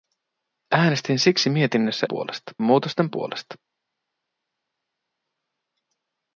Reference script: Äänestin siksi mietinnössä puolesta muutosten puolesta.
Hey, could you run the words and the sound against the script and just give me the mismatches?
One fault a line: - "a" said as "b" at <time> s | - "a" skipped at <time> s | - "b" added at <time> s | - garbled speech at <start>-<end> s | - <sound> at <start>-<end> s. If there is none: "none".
none